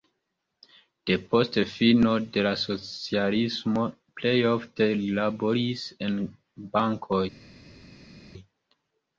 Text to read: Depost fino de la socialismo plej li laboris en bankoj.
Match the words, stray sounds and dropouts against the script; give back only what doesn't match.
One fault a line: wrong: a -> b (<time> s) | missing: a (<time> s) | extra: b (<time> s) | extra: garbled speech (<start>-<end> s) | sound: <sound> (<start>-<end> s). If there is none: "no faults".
extra: ofte (4.5 s)